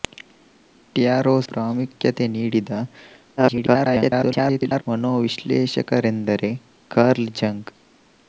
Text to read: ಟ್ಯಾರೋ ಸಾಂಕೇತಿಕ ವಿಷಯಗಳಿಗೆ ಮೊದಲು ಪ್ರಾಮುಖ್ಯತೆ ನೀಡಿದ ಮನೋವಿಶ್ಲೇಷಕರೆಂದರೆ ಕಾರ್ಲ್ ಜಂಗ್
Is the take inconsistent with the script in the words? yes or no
yes